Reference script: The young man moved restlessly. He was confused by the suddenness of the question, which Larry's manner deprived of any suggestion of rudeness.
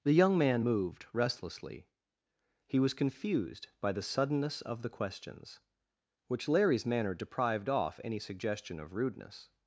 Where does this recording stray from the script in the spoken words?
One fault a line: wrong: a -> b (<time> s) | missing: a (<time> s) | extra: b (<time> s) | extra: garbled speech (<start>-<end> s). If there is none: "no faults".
wrong: question -> questions (4.9 s)
wrong: of -> off (7.7 s)